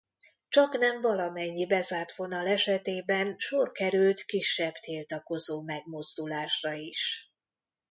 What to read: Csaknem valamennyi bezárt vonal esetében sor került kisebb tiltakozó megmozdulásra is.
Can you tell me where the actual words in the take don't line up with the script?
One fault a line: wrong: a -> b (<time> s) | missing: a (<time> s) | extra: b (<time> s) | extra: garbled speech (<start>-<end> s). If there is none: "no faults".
no faults